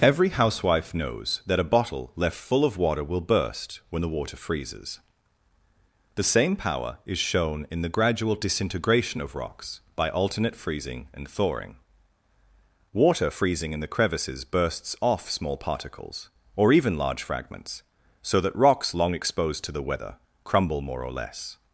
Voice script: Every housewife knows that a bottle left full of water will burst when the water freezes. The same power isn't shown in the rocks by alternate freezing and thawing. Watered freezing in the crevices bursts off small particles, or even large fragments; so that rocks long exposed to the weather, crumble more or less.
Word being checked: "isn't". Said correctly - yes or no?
no